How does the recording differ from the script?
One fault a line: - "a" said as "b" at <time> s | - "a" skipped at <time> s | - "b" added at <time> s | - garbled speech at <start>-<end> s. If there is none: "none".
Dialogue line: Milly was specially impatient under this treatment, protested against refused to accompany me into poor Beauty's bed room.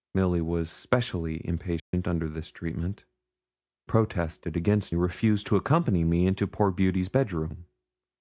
none